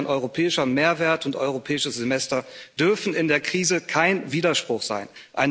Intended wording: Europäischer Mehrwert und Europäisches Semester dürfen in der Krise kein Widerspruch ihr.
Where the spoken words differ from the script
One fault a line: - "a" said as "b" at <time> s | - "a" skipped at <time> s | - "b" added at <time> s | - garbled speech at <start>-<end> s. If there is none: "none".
- "ihr" said as "sein" at 4.8 s